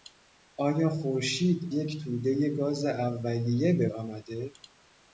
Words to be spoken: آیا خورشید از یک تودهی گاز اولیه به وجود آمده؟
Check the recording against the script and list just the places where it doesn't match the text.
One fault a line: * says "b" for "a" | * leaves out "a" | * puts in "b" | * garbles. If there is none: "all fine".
* leaves out "از"
* leaves out "وجود"